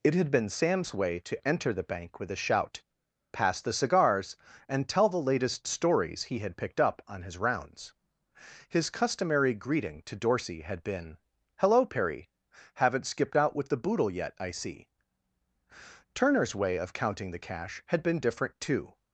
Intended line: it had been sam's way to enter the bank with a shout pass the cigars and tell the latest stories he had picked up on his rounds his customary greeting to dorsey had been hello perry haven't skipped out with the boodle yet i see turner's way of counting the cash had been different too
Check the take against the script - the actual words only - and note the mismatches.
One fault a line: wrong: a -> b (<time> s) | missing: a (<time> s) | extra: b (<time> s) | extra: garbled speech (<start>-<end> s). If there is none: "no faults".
no faults